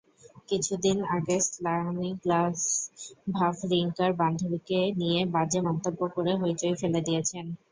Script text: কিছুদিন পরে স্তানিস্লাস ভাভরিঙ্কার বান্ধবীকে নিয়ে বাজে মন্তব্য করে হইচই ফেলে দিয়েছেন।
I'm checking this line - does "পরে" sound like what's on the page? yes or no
no